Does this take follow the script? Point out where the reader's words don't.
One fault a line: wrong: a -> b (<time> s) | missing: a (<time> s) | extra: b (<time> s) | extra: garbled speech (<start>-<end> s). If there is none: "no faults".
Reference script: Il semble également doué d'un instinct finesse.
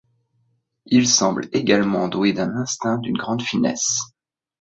extra: d'une grande (3.0 s)